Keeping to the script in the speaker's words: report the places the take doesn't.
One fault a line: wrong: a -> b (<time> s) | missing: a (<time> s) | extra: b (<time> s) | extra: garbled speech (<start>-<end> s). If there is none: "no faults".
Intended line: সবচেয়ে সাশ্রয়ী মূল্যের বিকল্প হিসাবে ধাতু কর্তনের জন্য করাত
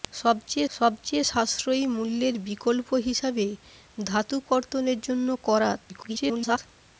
extra: সবচেয়ে (0.8 s)
extra: garbled speech (5.9-6.6 s)